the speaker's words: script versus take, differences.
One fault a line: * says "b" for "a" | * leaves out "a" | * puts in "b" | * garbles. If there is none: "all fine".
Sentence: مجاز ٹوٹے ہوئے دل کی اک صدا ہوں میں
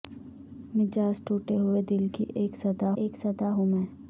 * puts in "اک صدا"